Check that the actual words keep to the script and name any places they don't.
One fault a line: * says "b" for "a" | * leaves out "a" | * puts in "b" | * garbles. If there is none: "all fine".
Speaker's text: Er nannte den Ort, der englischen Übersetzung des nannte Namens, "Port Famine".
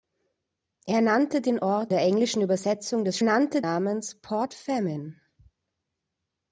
all fine